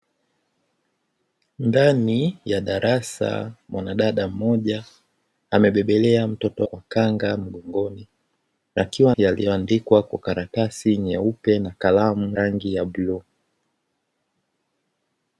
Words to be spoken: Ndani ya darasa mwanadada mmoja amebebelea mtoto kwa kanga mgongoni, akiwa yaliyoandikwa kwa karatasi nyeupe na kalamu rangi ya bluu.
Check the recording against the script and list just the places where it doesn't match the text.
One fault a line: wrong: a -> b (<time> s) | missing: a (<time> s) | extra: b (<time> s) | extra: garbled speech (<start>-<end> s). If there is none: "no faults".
no faults